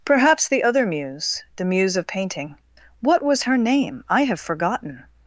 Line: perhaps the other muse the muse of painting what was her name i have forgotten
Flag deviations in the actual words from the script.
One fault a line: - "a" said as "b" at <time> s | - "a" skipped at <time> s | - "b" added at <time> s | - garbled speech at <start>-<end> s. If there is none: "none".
none